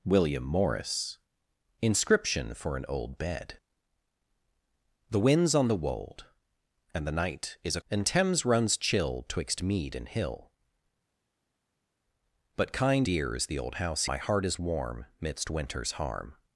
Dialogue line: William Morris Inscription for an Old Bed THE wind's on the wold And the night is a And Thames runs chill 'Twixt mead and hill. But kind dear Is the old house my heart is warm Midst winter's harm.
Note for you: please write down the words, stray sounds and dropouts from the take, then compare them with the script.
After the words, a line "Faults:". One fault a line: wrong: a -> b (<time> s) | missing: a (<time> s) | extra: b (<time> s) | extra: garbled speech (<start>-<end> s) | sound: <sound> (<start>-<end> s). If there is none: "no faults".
William Morris Inscription for an Old Bed THE wind's on the wold And the night is a And Thames runs chill 'Twixt mead and hill. But kind dear Is the old house my heart is warm Midst winter's harm.
Faults:
no faults